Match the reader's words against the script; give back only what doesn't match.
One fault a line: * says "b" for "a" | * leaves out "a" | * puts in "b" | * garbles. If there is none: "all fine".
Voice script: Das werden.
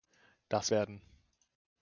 all fine